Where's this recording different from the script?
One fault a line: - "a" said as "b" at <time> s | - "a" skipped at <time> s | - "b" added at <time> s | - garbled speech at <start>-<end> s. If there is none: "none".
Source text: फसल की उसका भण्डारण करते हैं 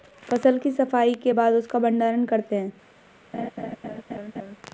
- "सफाई के बाद" added at 0.7 s